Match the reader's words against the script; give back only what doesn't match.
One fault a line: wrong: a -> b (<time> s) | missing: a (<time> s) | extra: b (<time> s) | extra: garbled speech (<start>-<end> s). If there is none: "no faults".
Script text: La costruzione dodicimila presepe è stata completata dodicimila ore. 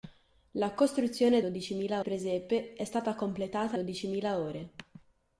no faults